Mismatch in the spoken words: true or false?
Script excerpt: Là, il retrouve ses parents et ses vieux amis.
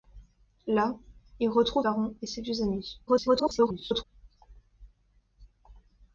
true